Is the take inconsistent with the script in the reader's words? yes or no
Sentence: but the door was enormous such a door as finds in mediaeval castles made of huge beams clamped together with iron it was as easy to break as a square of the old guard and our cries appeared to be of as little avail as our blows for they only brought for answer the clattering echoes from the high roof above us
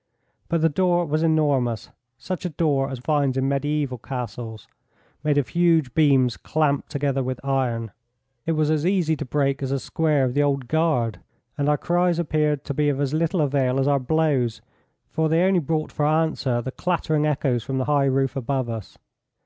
no